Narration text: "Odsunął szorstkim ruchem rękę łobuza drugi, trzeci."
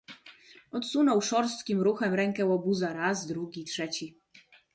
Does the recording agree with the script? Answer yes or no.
no